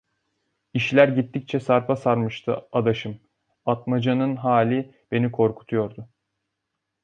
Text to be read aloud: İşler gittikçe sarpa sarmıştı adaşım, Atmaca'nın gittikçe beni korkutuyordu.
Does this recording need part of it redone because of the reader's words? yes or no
yes